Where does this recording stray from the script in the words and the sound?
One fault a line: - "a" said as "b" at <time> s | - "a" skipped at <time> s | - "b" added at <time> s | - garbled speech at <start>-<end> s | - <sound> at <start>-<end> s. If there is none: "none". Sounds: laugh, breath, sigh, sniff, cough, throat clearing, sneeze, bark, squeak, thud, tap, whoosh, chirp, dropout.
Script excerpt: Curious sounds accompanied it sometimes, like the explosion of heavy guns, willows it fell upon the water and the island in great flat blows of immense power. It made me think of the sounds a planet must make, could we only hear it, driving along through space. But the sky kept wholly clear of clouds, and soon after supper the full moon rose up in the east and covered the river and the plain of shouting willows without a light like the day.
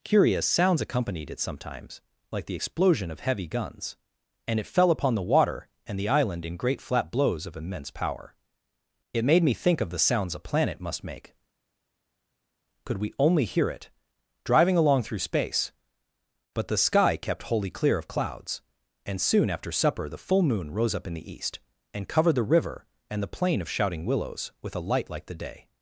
- "willows" said as "and" at 4.5 s
- "without" said as "with" at 24.6 s